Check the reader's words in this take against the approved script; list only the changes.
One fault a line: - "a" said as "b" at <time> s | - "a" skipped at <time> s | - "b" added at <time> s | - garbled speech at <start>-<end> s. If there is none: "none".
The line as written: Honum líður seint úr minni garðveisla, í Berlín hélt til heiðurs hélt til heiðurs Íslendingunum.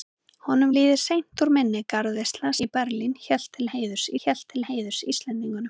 none